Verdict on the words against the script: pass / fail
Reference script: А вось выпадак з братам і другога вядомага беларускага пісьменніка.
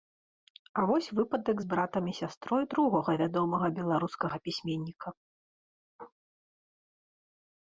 fail